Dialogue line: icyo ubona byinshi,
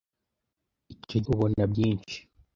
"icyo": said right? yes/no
yes